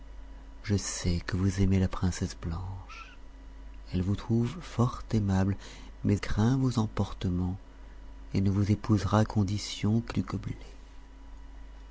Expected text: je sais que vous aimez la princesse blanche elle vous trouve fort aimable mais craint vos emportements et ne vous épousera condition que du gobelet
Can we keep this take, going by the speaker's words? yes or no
yes